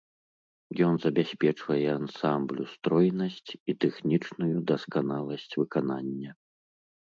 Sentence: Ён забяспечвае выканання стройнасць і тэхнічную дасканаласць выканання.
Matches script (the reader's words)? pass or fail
fail